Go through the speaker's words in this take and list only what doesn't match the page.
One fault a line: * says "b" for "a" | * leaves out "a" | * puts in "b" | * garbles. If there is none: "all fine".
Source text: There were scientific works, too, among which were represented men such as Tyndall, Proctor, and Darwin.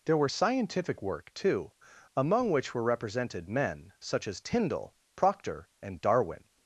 * says "work" for "works"